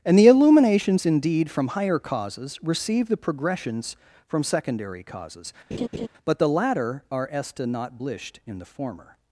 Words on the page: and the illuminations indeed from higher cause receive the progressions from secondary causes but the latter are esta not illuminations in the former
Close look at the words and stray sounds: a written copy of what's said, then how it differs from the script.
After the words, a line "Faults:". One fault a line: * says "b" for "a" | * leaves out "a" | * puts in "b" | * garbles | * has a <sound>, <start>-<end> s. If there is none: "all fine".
and the illuminations indeed from higher causes receive the progressions from secondary causes but the latter are esta not blished in the former
Faults:
* says "causes" for "cause"
* has a laugh, 5.7-6.1 s
* says "blished" for "illuminations"